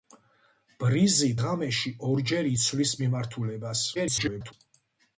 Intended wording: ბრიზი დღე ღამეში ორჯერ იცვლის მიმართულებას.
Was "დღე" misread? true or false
true